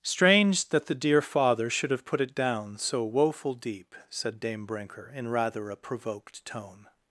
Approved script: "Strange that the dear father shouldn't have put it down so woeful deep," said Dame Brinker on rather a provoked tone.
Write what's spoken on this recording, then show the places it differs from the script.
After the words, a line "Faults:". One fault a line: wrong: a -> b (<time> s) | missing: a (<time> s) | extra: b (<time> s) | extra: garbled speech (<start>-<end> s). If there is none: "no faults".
"Strange that the dear father should have put it down so woeful deep," said Dame Brinker in rather a provoked tone.
Faults:
wrong: shouldn't -> should (1.7 s)
wrong: on -> in (5.1 s)